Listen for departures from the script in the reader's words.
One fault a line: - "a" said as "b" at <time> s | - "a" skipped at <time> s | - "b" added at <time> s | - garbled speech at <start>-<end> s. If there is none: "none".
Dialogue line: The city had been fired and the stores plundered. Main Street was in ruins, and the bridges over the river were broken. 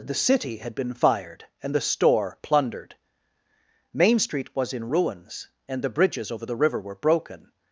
- "stores" said as "store" at 1.8 s